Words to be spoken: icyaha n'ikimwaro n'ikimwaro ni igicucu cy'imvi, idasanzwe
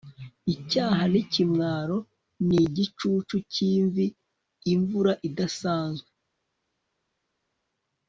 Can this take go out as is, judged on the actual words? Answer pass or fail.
fail